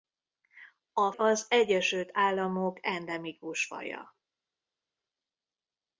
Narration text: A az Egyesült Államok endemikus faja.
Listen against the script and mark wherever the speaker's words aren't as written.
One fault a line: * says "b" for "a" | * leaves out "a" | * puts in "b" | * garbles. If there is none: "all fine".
all fine